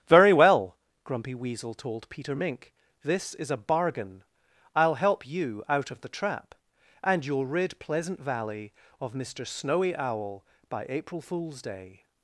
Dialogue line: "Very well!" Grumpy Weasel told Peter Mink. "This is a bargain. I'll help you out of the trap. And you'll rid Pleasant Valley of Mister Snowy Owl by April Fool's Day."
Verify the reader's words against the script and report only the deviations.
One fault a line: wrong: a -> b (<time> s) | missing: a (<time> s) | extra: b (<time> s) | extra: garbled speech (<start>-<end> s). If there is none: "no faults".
no faults